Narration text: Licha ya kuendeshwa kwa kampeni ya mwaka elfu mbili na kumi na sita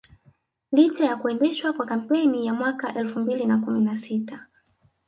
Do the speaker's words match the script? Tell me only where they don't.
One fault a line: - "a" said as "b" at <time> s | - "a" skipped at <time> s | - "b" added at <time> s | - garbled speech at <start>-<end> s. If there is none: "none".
none